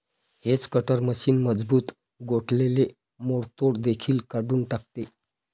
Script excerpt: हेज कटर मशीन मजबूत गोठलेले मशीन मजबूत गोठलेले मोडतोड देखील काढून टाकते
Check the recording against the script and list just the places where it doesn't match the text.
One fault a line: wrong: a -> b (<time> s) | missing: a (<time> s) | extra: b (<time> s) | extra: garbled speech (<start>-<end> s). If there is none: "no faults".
missing: मशीन मजबूत गोठलेले (2.9 s)